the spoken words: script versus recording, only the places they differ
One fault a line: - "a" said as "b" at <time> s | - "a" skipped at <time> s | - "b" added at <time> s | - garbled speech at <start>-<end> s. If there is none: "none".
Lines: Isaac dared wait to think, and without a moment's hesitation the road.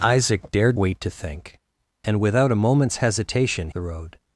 none